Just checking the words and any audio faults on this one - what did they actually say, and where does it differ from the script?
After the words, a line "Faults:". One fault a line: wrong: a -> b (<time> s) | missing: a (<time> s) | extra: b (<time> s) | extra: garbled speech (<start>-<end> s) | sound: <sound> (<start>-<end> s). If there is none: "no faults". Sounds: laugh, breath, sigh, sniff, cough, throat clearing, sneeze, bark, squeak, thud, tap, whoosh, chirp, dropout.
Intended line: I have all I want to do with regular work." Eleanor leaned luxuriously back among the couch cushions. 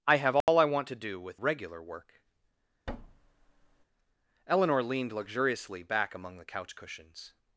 I have all I want to do with regular work." Eleanor leaned luxuriously back among the couch cushions.
Faults:
sound: dropout (0.4-0.5 s)
sound: thud (2.9-3.9 s)